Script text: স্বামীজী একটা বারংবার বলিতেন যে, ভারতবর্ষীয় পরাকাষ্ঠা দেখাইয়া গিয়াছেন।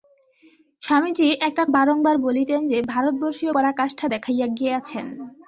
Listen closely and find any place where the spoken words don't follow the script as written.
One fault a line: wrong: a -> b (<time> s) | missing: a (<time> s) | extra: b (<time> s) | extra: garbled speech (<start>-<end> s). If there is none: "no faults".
no faults